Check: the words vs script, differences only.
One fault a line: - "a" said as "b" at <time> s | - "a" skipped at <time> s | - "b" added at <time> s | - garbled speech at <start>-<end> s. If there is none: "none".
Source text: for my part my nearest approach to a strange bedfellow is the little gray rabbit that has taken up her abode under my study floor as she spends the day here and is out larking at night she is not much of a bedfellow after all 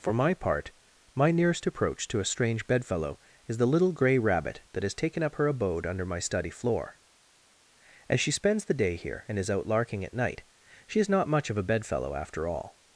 none